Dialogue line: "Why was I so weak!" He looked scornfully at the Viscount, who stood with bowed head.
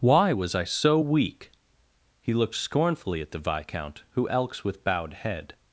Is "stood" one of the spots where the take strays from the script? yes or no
yes